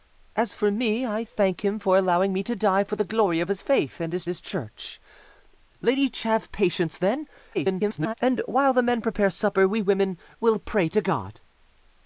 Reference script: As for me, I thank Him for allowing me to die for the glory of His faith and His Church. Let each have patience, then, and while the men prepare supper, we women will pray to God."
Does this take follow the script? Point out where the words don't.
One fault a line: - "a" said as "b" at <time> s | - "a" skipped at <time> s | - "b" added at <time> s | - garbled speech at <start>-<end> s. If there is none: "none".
- "His" added at 4.3 s
- garbled speech at 7.5-8.1 s